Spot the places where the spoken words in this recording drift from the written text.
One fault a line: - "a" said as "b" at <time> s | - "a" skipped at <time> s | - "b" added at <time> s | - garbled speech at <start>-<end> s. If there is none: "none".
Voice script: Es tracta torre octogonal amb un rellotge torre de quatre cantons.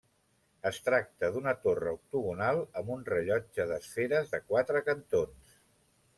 - "d'una" added at 1.4 s
- "torre" said as "d'esferes" at 3.7 s